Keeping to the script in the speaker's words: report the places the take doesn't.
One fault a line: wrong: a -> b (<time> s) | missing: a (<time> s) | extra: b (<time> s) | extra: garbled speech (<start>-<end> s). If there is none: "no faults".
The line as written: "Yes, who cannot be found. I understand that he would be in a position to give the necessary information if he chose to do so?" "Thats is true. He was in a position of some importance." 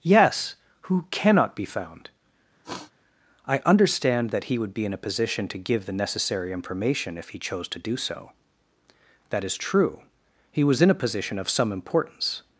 wrong: Thats -> That (9.3 s)